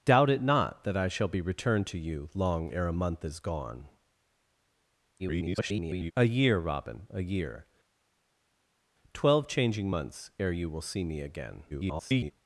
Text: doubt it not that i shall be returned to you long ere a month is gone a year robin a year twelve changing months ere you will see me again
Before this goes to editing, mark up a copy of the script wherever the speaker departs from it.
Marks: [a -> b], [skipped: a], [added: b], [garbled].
doubt it not that i shall be returned to you long ere a month is gone [garbled] a year robin a year twelve changing months ere you will see me again [garbled]